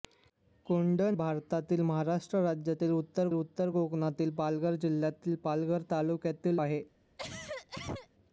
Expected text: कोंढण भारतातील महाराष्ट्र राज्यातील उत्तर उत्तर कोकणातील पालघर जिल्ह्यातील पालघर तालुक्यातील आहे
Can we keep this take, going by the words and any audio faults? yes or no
no